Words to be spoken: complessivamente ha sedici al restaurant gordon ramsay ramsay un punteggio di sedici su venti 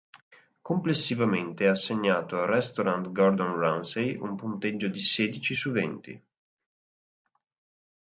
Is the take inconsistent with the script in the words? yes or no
yes